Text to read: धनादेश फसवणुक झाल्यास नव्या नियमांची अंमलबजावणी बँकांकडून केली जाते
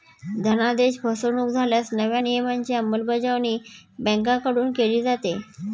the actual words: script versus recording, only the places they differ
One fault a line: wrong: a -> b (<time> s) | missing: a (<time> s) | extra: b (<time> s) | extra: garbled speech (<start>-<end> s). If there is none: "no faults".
no faults